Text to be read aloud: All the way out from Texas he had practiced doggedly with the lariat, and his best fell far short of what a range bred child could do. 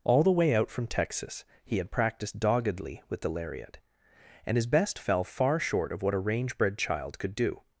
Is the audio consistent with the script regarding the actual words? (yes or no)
yes